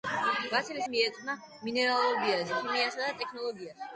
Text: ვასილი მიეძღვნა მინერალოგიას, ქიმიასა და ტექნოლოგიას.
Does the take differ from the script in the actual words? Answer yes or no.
no